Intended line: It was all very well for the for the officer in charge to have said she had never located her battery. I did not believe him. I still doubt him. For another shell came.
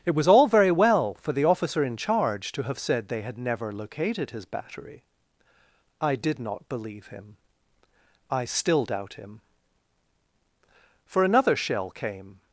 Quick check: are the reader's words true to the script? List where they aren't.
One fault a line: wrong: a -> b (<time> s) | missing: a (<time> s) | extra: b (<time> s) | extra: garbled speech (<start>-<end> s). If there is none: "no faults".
missing: for the (1.4 s)
wrong: she -> they (3.1 s)
wrong: her -> his (4.3 s)